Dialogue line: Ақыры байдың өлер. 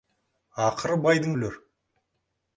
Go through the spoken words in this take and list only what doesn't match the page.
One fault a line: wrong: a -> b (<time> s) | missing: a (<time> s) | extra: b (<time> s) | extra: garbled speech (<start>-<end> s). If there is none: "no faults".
no faults